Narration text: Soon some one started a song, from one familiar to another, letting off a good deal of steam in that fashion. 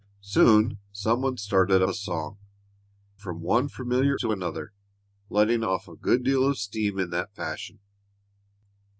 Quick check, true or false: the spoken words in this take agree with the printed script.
true